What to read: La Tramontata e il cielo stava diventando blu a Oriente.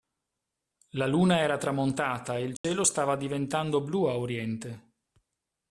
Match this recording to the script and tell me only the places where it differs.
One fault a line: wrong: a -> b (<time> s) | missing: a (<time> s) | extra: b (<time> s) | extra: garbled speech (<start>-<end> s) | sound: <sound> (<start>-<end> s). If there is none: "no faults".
extra: Luna era (1.1 s)
sound: dropout (2.6-2.6 s)